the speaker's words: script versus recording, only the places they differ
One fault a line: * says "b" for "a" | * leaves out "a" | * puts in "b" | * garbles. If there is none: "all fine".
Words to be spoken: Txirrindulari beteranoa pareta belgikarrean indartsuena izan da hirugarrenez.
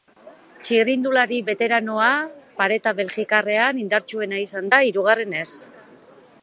all fine